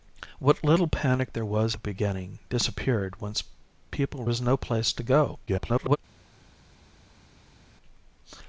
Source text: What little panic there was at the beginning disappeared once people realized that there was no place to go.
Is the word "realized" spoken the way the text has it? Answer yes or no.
no